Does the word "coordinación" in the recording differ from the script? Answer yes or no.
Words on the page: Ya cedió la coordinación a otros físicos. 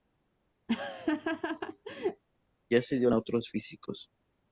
yes